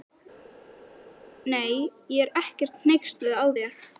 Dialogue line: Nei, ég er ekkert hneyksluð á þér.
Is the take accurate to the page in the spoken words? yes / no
yes